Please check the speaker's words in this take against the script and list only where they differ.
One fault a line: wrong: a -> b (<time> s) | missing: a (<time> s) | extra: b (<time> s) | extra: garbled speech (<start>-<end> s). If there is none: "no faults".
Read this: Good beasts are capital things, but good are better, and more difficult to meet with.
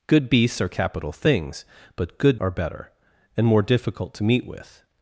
no faults